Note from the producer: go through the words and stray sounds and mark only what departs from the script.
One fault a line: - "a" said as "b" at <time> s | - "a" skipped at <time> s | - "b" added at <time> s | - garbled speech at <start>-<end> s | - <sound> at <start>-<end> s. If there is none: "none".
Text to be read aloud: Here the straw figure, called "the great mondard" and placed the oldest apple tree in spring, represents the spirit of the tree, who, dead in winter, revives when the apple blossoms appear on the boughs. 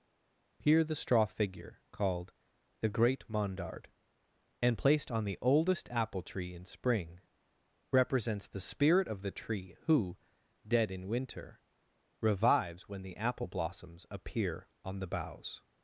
- "on" added at 5.1 s